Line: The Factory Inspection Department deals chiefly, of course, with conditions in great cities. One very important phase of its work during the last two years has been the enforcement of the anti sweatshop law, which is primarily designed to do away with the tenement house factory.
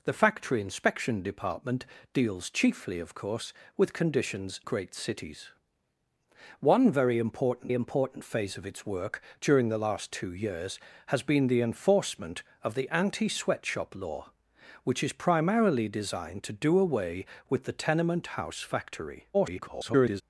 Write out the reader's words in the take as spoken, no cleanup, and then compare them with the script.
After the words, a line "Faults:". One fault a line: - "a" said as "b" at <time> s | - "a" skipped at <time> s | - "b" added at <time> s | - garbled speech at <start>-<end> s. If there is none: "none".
The Factory Inspection Department deals chiefly, of course, with conditions great cities. One very important important phase of its work during the last two years has been the enforcement of the anti sweatshop law, which is primarily designed to do away with the tenement house factory. [garbled]
Faults:
- "in" skipped at 4.6 s
- "important" added at 7.7 s
- garbled speech at 19.3-20.2 s